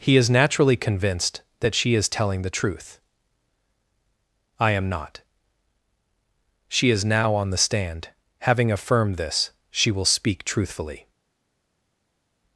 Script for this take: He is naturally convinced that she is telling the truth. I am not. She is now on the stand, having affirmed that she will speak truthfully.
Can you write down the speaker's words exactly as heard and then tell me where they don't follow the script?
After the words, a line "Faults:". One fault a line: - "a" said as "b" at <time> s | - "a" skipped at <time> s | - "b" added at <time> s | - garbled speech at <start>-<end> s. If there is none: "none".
He is naturally convinced that she is telling the truth. I am not. She is now on the stand, having affirmed this she will speak truthfully.
Faults:
- "that" said as "this" at 9.2 s